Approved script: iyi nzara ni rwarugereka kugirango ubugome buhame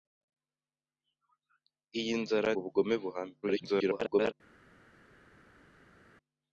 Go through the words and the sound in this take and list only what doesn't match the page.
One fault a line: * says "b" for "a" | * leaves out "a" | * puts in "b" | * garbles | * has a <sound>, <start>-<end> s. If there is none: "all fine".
* leaves out "ni rwarugereka kugirango"
* garbles